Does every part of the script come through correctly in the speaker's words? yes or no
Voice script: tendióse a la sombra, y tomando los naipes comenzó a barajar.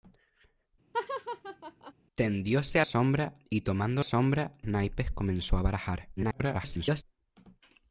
no